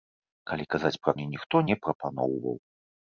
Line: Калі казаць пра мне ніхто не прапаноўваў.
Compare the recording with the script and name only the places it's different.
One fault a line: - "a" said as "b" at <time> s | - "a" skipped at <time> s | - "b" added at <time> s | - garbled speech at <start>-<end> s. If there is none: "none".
none